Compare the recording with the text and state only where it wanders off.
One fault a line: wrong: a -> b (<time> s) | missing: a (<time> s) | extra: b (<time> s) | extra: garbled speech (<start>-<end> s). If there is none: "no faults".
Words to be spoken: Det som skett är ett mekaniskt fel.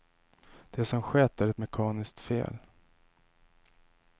no faults